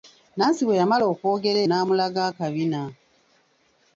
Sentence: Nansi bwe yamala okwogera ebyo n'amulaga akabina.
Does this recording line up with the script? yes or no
no